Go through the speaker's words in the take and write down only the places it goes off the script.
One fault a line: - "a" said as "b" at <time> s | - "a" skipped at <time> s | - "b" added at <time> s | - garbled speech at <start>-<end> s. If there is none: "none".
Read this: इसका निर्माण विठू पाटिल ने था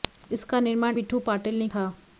none